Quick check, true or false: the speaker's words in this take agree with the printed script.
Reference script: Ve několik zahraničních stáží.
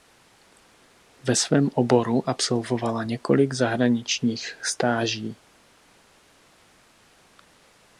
false